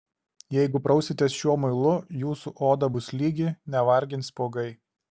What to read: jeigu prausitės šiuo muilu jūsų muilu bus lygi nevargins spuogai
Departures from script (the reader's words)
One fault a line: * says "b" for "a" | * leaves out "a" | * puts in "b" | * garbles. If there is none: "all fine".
* says "oda" for "muilu"